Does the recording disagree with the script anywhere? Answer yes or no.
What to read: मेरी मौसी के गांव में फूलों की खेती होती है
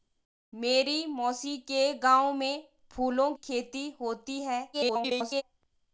yes